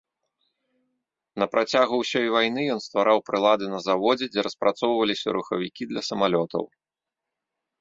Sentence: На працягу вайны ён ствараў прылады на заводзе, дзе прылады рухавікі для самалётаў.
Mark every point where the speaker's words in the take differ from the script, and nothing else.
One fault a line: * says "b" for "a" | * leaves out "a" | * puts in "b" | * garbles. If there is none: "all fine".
* puts in "ўсёй"
* says "распрацоўваліся" for "прылады"